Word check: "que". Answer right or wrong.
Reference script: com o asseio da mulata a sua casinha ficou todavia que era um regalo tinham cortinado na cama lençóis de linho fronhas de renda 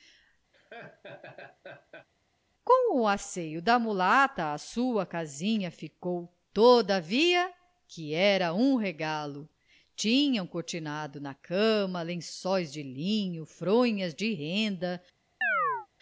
right